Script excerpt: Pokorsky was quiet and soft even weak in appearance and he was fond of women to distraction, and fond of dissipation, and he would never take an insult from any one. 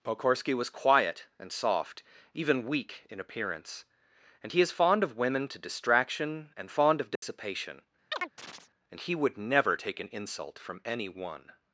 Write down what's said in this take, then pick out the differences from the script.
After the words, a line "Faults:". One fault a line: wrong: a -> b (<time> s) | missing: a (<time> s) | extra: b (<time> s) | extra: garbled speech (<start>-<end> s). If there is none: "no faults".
Pokorsky was quiet and soft even weak in appearance and he is fond of women to distraction, and fond of dissipation, and he would never take an insult from any one.
Faults:
wrong: was -> is (4.6 s)